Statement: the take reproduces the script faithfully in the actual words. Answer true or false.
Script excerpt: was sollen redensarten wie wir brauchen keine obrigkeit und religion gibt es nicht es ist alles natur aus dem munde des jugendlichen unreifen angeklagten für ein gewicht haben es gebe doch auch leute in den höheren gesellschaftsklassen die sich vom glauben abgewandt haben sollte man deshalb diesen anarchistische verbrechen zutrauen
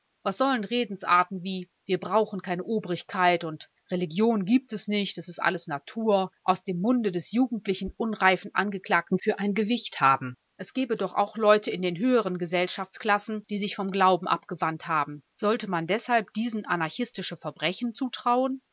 true